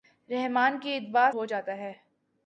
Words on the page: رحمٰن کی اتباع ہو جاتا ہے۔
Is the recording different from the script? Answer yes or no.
no